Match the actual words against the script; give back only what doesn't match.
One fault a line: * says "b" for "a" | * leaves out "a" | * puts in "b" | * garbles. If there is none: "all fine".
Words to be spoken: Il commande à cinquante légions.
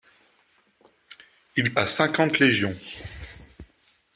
* leaves out "commande"